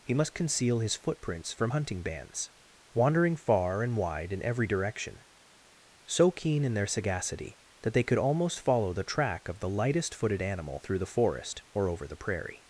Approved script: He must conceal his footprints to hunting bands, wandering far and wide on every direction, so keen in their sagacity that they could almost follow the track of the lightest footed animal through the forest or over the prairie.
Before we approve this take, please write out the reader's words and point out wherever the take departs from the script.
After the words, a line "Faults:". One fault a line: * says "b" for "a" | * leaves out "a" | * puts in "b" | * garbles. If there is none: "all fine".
He must conceal his footprints from hunting bands, wandering far and wide in every direction, so keen in their sagacity that they could almost follow the track of the lightest footed animal through the forest or over the prairie.
Faults:
* says "from" for "to"
* says "in" for "on"